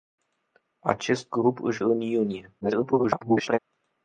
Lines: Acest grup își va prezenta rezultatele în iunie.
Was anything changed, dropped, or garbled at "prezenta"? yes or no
yes